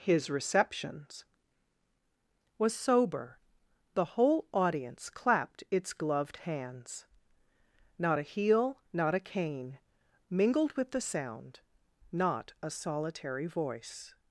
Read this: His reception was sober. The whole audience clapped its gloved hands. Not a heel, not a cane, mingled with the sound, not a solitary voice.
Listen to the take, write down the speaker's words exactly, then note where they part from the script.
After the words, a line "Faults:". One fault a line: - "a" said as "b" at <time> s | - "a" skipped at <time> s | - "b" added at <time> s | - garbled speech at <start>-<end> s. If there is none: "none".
His receptions was sober. The whole audience clapped its gloved hands. Not a heel, not a cane, mingled with the sound, not a solitary voice.
Faults:
- "reception" said as "receptions" at 0.3 s